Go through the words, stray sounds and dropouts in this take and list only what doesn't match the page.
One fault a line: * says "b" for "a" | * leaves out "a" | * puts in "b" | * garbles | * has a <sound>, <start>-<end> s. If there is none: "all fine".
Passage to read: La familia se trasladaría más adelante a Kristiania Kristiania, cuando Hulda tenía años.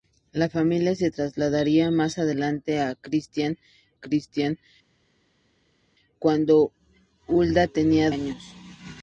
all fine